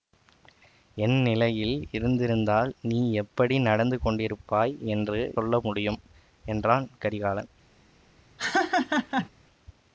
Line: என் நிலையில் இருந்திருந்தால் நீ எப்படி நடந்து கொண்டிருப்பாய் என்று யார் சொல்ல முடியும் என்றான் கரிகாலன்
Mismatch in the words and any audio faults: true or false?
true